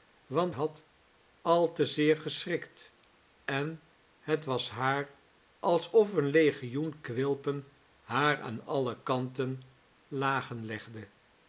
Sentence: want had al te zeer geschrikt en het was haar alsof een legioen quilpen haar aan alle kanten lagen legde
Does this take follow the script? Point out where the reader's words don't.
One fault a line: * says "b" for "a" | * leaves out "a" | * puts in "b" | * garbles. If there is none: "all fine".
all fine